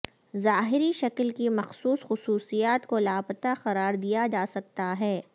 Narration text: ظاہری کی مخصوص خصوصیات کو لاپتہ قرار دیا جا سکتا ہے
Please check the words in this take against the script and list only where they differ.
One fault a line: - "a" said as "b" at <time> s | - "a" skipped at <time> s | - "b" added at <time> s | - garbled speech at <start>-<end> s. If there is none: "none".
- "شکل" added at 0.9 s